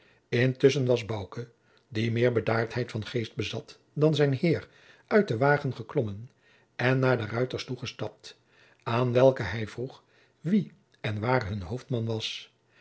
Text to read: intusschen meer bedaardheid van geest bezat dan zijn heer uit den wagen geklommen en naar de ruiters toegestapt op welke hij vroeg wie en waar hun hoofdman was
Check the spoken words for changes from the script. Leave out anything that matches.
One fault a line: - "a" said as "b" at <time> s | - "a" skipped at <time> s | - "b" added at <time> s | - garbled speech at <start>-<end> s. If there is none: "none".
- "was bouke die" added at 0.8 s
- "op" said as "aan" at 8.8 s